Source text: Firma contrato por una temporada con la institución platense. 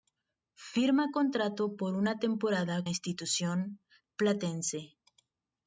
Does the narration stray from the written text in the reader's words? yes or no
yes